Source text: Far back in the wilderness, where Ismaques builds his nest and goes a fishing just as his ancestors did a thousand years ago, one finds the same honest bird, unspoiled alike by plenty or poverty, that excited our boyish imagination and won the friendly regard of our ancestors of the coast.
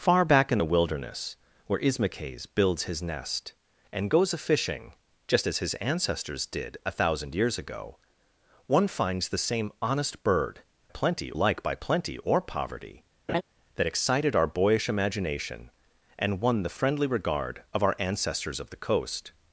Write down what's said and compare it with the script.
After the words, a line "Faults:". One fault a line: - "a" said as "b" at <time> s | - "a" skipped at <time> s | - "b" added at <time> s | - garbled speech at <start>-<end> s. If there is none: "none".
Far back in the wilderness, where Ismaques builds his nest and goes a fishing just as his ancestors did a thousand years ago, one finds the same honest bird, plenty alike by plenty or poverty, that excited our boyish imagination and won the friendly regard of our ancestors of the coast.
Faults:
- "unspoiled" said as "plenty" at 10.9 s